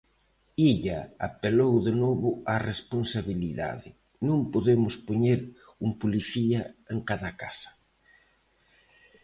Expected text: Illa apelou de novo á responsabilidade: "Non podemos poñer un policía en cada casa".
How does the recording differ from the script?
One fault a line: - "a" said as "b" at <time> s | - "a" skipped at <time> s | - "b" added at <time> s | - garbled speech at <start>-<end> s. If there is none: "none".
none